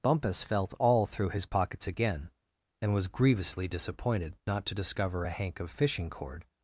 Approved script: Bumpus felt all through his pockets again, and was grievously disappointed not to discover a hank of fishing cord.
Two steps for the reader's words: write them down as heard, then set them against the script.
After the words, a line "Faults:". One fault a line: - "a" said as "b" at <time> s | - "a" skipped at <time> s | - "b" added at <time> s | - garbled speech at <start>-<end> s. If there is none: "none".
Bumpus felt all through his pockets again, and was grievously disappointed not to discover a hank of fishing cord.
Faults:
none